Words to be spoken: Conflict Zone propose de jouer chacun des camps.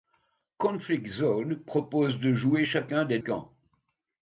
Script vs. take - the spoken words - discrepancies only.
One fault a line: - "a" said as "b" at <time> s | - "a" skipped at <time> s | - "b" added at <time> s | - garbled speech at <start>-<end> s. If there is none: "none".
none